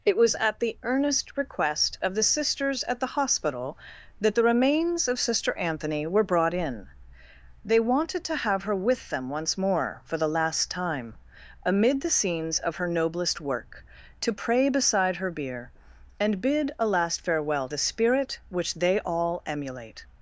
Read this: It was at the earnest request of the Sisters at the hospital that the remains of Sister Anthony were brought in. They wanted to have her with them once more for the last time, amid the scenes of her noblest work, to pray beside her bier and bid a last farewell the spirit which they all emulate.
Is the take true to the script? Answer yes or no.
yes